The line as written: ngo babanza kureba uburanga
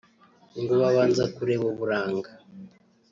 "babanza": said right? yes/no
yes